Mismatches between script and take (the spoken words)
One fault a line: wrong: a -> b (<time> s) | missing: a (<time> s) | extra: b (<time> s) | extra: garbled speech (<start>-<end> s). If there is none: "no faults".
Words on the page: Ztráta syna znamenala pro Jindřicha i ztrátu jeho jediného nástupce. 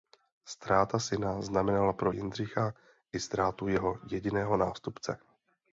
no faults